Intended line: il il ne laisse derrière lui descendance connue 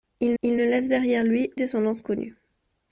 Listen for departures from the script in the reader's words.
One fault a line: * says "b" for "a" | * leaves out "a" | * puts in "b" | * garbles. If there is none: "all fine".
all fine